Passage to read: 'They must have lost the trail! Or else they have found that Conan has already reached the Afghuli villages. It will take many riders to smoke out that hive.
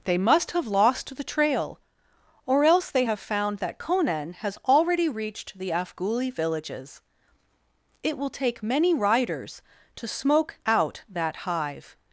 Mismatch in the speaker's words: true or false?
false